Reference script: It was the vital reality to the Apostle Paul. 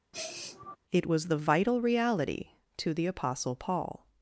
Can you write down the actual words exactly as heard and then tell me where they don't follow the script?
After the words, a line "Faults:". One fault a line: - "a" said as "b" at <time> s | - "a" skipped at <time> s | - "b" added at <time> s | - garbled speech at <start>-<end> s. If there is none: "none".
It was the vital reality to the Apostle Paul.
Faults:
none